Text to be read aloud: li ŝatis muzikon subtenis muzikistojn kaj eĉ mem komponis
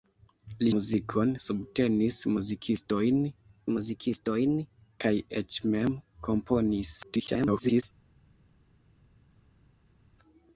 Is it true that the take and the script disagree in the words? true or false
true